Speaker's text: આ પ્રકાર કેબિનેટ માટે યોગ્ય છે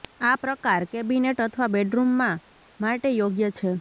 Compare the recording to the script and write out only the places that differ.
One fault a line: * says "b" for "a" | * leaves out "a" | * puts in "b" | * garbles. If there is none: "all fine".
* puts in "અથવા બેડરૂમમાં"